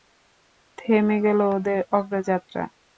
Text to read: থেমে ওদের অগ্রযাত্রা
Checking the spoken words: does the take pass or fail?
fail